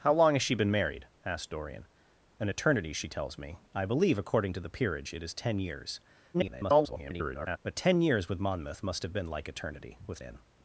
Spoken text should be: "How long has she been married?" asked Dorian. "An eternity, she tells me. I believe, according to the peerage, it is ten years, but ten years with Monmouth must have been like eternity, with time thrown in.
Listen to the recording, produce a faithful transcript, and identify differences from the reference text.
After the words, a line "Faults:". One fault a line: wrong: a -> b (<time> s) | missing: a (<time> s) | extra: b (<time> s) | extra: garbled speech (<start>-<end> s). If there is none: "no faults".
"How long has she been married?" asked Dorian. "An eternity, she tells me. I believe, according to the peerage, it is ten years, [garbled] but ten years with Monmouth must have been like eternity, with in.
Faults:
extra: garbled speech (6.3-7.6 s)
missing: time thrown (10.2 s)